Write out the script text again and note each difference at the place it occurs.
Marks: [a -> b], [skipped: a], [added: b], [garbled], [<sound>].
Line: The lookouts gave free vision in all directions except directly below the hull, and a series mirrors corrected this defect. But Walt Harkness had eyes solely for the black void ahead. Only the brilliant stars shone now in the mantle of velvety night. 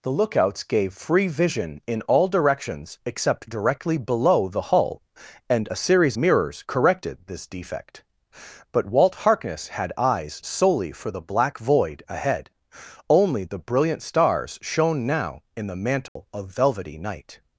The lookouts gave free vision in all directions except directly below the hull, and a series mirrors corrected this defect. But Walt Harkness had eyes solely for the black void ahead. Only the brilliant stars shone now in the mantle [dropout] of velvety night.